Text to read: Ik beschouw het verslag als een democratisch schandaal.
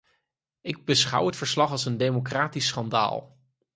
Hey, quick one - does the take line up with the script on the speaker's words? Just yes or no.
yes